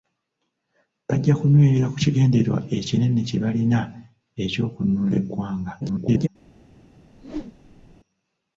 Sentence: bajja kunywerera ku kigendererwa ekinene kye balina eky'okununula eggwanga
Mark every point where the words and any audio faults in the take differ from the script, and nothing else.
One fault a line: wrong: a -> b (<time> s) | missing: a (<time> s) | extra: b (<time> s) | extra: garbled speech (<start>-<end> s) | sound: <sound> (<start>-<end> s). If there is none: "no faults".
extra: garbled speech (5.8-6.3 s)
sound: whoosh (7.1-8.0 s)